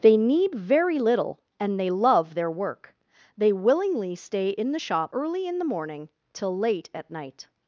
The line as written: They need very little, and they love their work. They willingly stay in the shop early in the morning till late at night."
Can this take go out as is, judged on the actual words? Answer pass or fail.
pass